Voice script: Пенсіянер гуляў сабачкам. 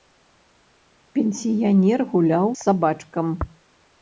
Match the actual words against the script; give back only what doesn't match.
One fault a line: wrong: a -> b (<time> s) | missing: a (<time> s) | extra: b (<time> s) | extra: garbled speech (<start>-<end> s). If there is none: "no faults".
no faults